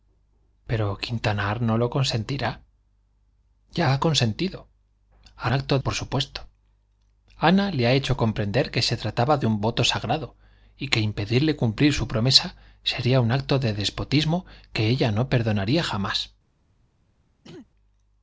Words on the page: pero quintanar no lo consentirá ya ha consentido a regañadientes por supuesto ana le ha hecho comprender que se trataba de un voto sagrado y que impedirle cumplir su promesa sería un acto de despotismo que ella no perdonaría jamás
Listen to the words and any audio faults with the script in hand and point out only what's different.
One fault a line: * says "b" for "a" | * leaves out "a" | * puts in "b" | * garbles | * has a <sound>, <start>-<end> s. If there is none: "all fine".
* says "acto" for "regañadientes"
* has a throat clearing, 17.4-17.7 s